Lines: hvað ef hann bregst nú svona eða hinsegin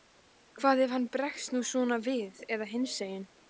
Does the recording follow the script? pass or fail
fail